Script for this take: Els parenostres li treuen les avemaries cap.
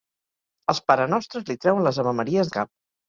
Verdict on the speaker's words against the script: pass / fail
pass